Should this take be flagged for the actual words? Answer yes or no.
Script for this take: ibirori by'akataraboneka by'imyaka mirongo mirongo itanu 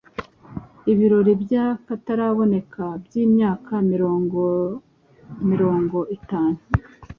no